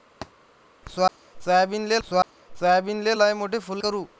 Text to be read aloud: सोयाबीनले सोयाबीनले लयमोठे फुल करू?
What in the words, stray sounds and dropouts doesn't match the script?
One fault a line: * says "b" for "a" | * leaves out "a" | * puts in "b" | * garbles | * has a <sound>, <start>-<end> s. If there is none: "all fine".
* has a thud, 0.2-0.3 s